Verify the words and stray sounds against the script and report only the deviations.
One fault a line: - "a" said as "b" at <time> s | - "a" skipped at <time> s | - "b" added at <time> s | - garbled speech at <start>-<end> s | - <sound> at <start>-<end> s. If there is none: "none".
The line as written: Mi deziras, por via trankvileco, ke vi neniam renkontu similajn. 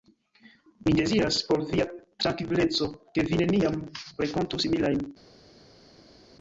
none